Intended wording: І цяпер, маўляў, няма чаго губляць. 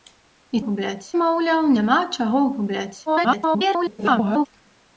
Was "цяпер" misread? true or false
true